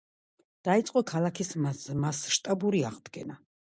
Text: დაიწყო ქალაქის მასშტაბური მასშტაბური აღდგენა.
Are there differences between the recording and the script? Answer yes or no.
yes